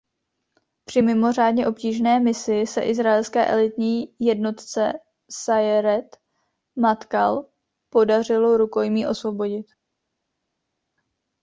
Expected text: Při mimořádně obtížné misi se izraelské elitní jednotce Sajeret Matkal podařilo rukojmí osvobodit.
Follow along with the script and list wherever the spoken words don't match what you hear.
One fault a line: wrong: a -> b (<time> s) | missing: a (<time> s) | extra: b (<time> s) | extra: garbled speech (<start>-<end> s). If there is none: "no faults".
no faults